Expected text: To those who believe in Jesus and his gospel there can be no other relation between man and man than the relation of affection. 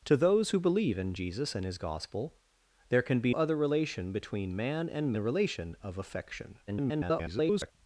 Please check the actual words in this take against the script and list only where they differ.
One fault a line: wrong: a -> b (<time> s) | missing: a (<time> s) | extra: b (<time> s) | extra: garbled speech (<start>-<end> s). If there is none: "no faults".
missing: no (3.3 s)
missing: man than (5.1 s)
extra: garbled speech (6.7-7.7 s)